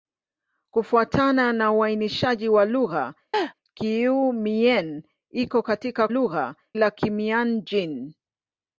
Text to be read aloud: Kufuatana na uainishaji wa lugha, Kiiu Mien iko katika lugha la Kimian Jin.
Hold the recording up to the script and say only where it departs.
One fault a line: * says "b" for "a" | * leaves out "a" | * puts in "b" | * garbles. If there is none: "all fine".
all fine